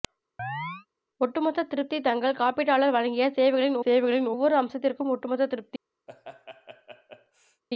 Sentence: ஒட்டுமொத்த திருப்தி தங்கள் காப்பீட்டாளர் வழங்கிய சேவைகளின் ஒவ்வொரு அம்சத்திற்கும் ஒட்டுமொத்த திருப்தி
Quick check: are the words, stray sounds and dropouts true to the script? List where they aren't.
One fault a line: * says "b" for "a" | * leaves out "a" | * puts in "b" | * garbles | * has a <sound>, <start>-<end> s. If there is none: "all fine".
* has a chirp, 0.4-0.9 s
* puts in "சேவைகளின்"
* has a laugh, 6.1-7.6 s